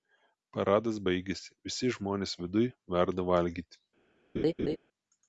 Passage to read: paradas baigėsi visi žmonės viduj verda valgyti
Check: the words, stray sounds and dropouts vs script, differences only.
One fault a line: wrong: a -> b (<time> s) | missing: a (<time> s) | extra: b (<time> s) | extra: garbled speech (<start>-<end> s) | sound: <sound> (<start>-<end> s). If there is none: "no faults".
sound: laugh (4.4-4.8 s)